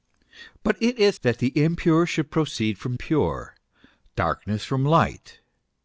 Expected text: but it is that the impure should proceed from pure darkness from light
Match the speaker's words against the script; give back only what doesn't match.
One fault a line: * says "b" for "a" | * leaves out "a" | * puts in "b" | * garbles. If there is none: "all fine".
all fine